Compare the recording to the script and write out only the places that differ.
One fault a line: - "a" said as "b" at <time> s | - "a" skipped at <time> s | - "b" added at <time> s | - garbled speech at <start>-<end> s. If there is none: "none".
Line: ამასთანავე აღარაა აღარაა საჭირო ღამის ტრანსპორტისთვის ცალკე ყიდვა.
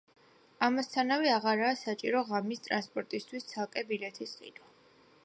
- "აღარაა" skipped at 1.8 s
- "ბილეთის" added at 3.9 s